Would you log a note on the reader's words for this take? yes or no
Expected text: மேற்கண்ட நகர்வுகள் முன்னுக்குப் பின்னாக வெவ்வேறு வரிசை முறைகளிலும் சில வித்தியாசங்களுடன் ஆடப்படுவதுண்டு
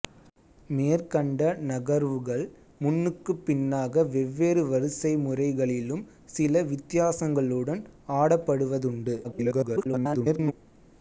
yes